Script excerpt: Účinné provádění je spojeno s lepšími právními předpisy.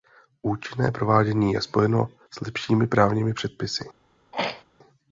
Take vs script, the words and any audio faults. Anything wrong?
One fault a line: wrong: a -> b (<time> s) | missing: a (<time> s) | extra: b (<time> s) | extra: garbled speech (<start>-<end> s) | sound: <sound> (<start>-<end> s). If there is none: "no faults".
sound: throat clearing (4.3-4.6 s)